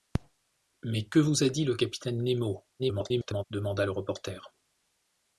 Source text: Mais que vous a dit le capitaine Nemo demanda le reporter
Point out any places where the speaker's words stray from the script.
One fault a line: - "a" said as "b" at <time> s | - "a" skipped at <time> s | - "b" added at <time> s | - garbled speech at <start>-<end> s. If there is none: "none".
- garbled speech at 2.8-3.4 s